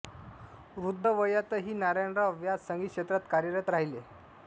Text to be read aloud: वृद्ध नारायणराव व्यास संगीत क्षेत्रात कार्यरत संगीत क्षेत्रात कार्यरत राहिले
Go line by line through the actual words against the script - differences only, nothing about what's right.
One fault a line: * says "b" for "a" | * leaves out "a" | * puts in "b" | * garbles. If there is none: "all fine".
* puts in "वयातही"
* leaves out "संगीत क्षेत्रात कार्यरत"